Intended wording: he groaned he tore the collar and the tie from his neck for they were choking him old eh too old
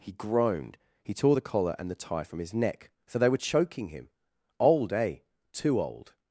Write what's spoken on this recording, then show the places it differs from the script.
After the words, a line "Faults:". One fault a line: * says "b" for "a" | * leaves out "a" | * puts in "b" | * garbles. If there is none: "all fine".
he groaned he tore the collar and the tie from his neck so they were choking him old eh too old
Faults:
* says "so" for "for"